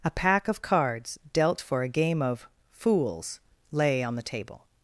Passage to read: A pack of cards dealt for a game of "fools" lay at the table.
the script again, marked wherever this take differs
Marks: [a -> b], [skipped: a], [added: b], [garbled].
A pack of cards dealt for a game of "fools" lay [at -> on] the table.